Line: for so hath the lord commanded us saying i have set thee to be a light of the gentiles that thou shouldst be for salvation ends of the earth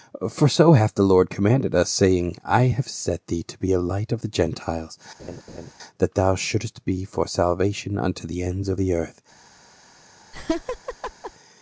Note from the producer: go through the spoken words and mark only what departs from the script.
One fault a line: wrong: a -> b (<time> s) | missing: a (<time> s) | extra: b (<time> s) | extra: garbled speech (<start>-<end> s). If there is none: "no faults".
extra: unto the (8.0 s)